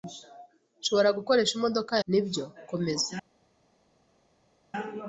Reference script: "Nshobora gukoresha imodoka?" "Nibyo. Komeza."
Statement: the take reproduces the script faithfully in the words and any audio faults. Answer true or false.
true